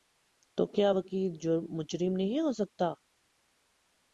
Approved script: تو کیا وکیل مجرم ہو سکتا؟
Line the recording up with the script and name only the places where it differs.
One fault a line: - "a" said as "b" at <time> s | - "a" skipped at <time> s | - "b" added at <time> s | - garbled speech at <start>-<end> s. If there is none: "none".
- "نہیں" added at 2.2 s